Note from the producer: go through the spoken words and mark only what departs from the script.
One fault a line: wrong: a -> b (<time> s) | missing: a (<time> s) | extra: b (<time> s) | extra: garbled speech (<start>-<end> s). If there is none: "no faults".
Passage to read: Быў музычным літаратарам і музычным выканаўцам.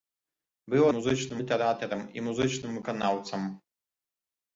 no faults